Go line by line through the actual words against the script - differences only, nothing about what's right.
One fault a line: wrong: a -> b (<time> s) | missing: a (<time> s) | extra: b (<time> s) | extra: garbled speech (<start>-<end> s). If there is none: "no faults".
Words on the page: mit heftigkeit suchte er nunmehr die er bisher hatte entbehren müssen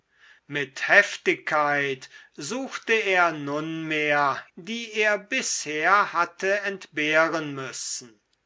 no faults